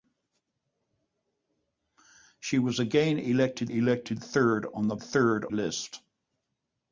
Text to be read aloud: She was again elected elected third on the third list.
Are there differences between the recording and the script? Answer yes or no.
no